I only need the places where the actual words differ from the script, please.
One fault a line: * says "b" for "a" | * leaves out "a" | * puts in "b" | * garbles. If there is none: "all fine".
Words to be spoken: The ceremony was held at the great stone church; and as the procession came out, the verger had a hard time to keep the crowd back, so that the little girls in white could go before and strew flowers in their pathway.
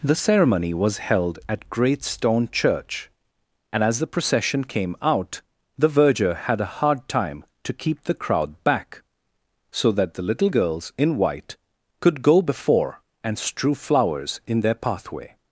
* leaves out "the"